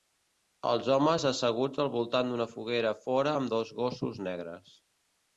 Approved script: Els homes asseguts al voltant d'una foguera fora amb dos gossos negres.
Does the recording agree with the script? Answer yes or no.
yes